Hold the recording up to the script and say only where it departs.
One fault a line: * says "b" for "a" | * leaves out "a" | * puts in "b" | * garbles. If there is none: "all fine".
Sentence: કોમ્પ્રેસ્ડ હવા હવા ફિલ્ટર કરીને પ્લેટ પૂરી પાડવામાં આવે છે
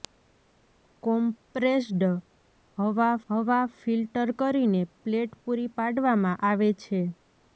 all fine